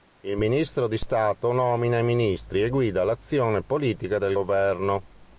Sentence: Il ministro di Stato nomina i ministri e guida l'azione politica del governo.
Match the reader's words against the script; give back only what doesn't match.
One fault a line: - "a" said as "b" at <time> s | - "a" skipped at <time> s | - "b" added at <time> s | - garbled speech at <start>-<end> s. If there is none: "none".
none